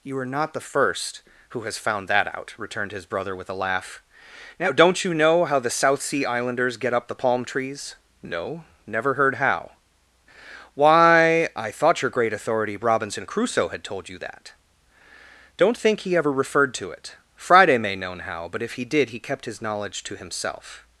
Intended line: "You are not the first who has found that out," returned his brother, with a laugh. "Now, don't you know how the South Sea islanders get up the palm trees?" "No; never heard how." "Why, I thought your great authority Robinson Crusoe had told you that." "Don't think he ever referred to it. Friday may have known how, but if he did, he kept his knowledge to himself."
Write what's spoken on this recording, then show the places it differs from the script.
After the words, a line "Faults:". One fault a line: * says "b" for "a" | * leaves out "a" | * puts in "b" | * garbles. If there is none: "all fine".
"You are not the first who has found that out," returned his brother, with a laugh. "Now, don't you know how the South Sea islanders get up the palm trees?" "No; never heard how." "Why, I thought your great authority Robinson Crusoe had told you that." "Don't think he ever referred to it. Friday may known how, but if he did, he kept his knowledge to himself."
Faults:
* leaves out "have"